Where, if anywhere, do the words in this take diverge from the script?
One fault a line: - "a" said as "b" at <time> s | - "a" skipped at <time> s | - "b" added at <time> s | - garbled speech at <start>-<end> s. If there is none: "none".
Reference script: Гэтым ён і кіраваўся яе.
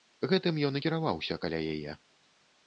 - "каля" added at 1.5 s